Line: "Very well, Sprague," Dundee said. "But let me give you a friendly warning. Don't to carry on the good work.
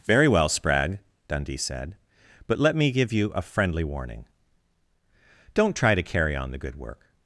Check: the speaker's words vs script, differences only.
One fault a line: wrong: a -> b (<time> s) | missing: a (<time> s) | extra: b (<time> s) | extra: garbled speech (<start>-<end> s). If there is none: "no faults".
extra: try (5.8 s)